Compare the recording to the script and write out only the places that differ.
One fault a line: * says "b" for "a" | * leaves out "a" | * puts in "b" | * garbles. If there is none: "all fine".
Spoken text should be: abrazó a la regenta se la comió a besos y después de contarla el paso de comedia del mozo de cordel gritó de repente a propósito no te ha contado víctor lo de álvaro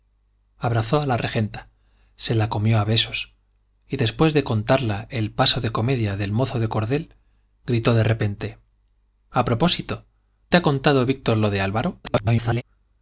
* leaves out "no"
* garbles